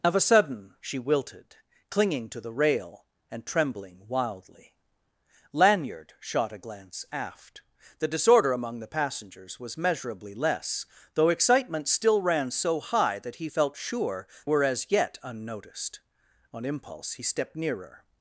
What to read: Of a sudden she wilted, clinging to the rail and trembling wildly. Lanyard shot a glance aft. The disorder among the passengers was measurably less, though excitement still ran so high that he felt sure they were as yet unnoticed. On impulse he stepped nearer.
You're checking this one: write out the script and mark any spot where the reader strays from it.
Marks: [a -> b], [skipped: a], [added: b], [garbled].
Of a sudden she wilted, clinging to the rail and trembling wildly. Lanyard shot a glance aft. The disorder among the passengers was measurably less, though excitement still ran so high that he felt sure [skipped: they] were as yet unnoticed. On impulse he stepped nearer.